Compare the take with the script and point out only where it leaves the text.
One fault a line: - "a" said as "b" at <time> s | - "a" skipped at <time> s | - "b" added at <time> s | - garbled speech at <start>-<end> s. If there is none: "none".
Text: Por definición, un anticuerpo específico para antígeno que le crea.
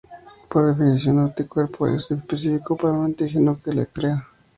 - "es" added at 1.9 s
- "un" added at 2.9 s
- "le" said as "lo" at 3.7 s